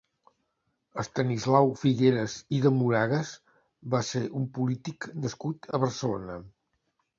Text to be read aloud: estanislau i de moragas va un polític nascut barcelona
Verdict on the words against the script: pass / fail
fail